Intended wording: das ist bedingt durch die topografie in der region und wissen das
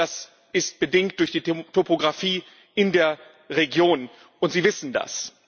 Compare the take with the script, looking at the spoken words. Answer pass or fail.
fail